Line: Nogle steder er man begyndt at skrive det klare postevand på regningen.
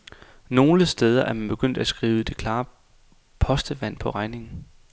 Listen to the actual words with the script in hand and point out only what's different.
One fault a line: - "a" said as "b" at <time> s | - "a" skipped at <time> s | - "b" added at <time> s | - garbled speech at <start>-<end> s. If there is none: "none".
none